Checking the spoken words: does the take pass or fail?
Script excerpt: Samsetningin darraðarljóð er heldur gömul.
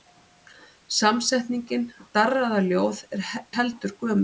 pass